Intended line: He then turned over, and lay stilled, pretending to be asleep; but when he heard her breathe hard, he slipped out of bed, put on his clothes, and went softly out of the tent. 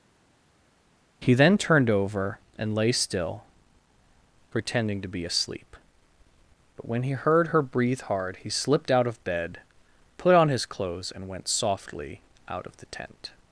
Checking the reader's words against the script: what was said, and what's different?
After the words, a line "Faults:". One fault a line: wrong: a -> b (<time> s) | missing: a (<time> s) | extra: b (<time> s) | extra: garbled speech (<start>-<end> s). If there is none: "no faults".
He then turned over, and lay still, pretending to be asleep; but when he heard her breathe hard, he slipped out of bed, put on his clothes, and went softly out of the tent.
Faults:
wrong: stilled -> still (2.9 s)